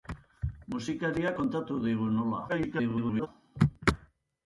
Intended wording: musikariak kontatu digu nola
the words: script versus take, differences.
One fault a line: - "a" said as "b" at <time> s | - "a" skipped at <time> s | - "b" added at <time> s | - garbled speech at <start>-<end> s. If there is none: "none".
- garbled speech at 2.5-3.3 s